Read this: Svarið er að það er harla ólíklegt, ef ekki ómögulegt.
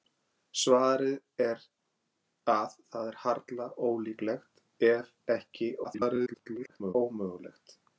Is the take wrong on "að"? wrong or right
right